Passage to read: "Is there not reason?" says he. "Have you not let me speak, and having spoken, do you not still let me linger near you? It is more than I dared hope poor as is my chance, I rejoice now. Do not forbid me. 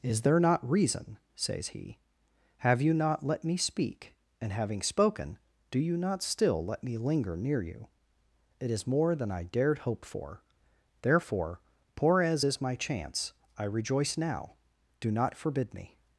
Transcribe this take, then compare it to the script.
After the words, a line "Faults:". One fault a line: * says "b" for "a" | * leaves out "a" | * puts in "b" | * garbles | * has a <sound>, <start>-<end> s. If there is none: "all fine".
"Is there not reason?" says he. "Have you not let me speak, and having spoken, do you not still let me linger near you? It is more than I dared hope for! Therefore, poor as is my chance, I rejoice now. Do not forbid me.
Faults:
* puts in "for Therefore"